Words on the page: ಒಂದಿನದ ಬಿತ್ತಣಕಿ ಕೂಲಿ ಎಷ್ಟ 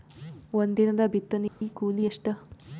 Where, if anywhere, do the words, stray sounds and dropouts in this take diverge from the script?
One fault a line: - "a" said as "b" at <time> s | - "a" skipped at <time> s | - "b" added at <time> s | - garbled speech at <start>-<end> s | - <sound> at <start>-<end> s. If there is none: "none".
- dropout at 1.5-1.6 s